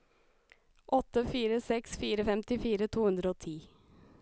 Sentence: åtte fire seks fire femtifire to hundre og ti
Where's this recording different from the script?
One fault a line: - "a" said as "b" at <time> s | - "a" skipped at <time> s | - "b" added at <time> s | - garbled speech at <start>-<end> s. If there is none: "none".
none